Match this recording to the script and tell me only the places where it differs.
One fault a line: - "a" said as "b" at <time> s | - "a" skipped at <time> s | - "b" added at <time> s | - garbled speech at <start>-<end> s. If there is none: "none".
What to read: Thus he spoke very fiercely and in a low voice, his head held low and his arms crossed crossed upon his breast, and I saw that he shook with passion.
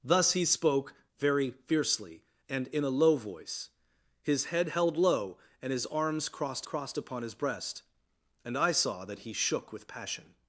none